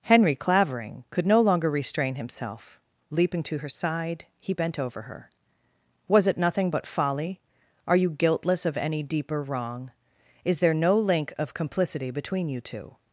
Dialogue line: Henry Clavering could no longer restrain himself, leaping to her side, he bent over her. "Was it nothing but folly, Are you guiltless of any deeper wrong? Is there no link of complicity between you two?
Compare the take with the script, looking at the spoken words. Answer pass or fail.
pass